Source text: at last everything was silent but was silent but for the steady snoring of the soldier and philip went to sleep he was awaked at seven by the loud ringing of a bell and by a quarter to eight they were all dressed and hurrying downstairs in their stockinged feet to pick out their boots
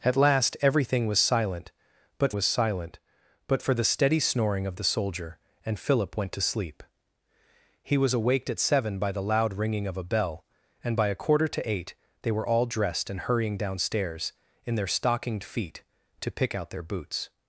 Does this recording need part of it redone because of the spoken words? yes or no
no